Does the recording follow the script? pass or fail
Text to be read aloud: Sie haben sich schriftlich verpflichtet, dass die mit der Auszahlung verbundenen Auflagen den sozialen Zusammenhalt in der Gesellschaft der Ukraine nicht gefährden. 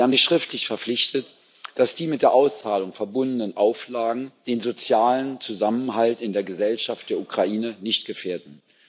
pass